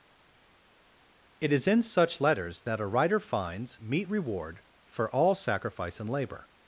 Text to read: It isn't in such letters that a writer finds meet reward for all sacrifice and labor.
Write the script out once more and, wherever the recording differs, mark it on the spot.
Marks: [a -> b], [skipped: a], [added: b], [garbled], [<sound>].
It [isn't -> is] in such letters that a writer finds meet reward for all sacrifice and labor.